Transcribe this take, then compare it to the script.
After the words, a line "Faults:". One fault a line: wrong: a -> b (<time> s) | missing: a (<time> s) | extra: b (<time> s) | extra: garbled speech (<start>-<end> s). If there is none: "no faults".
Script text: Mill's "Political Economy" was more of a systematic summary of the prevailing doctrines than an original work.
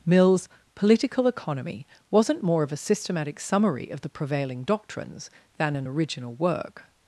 Mill's "Political Economy" wasn't more of a systematic summary of the prevailing doctrines than an original work.
Faults:
wrong: was -> wasn't (2.1 s)